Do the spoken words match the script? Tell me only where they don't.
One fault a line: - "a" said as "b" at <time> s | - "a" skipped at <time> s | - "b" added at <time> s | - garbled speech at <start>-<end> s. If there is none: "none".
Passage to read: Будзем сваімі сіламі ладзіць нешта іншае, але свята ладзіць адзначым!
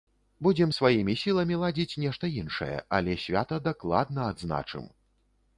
- "ладзіць" said as "дакладна" at 3.7 s